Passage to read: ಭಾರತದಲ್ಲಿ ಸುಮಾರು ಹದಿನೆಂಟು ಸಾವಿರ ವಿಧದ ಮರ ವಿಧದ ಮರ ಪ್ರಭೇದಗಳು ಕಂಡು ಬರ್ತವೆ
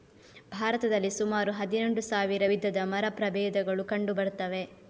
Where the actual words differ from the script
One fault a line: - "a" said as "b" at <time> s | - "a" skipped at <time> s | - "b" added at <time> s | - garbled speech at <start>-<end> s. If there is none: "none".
- "ವಿಧದ ಮರ" skipped at 3.0 s